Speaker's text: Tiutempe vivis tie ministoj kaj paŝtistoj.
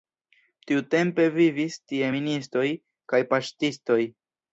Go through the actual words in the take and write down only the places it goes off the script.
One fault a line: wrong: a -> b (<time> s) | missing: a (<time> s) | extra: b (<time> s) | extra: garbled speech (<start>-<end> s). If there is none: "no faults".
no faults